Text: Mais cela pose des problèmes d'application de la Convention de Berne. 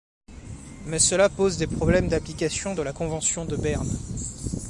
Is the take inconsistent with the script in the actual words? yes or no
no